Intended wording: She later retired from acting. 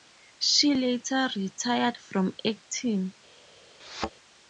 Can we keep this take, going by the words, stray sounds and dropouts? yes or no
no